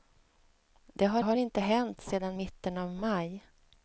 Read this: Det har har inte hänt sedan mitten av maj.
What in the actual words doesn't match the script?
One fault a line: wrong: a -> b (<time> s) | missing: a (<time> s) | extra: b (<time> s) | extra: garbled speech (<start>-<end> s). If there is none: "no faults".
no faults